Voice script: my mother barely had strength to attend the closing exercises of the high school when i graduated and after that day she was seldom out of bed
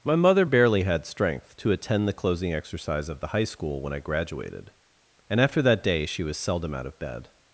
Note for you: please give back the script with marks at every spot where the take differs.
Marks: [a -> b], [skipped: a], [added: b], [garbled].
my mother barely had strength to attend the closing [exercises -> exercise] of the high school when i graduated and after that day she was seldom out of bed